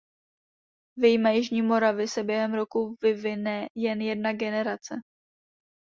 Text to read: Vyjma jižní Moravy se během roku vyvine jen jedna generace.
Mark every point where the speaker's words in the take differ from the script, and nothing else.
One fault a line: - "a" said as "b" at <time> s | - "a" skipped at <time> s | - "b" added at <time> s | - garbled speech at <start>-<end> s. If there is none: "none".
none